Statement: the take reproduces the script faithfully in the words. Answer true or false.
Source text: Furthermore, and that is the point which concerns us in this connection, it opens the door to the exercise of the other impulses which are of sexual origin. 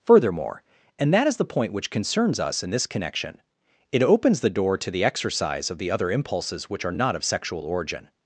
false